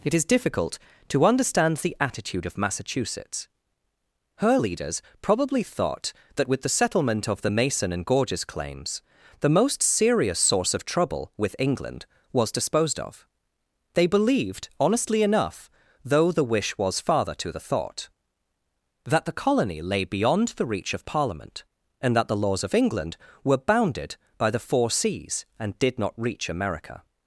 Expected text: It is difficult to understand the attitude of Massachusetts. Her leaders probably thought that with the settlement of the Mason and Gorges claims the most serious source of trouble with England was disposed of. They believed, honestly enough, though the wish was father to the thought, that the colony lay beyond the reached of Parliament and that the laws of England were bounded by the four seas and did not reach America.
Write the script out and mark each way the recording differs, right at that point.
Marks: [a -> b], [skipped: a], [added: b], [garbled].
It is difficult to understand the attitude of Massachusetts. Her leaders probably thought that with the settlement of the Mason and Gorges claims the most serious source of trouble with England was disposed of. They believed, honestly enough, though the wish was father to the thought, that the colony lay beyond the [reached -> reach] of Parliament and that the laws of England were bounded by the four seas and did not reach America.